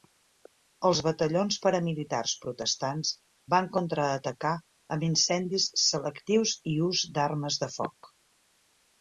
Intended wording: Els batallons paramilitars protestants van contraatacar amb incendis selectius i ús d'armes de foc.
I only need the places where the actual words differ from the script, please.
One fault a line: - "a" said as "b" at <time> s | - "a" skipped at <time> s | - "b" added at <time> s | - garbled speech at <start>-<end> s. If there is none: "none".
none